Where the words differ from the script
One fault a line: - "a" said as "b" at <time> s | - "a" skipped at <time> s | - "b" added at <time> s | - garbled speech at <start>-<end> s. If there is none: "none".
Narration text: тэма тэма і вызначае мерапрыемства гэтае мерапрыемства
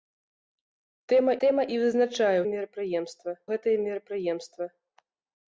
none